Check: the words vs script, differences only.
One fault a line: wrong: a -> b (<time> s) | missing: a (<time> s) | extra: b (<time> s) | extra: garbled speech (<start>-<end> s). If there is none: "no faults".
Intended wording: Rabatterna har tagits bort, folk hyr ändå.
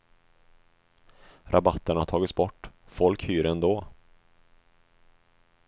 no faults